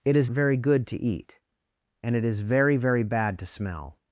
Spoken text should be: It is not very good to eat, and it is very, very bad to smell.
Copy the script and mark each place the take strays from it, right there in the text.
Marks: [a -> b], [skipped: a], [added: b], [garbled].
It is [skipped: not] very good to eat, and it is very, very bad to smell.